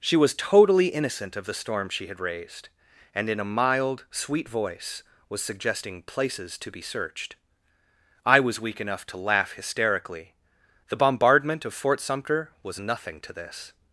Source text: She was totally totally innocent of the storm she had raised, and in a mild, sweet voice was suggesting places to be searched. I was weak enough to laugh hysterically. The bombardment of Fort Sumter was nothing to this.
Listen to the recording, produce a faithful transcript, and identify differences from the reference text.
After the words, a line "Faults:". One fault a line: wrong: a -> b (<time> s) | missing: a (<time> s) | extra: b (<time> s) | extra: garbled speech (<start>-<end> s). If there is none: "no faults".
She was totally innocent of the storm she had raised, and in a mild, sweet voice was suggesting places to be searched. I was weak enough to laugh hysterically. The bombardment of Fort Sumter was nothing to this.
Faults:
missing: totally (0.9 s)